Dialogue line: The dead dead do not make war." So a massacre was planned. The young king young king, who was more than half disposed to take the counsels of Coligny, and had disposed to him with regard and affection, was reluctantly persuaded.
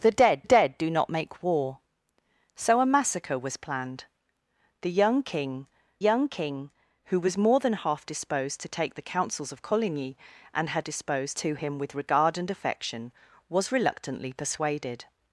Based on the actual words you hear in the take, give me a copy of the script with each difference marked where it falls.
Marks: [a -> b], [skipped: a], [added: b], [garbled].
The dead dead do not make war." So a massacre was planned. The young king young king, who was more than half disposed to take the counsels of Coligny, and had disposed to him with regard and affection, was reluctantly persuaded.